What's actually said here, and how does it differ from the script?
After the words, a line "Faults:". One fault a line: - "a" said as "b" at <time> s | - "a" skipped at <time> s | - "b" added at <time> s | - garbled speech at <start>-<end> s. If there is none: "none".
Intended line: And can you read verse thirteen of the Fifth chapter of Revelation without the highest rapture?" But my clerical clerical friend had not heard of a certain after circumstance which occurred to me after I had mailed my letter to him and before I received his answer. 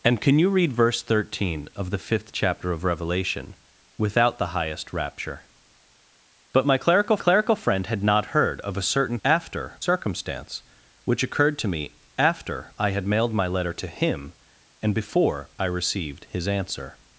And can you read verse thirteen of the Fifth chapter of Revelation without the highest rapture?" But my clerical clerical friend had not heard of a certain after circumstance which occurred to me after I had mailed my letter to him and before I received his answer.
Faults:
none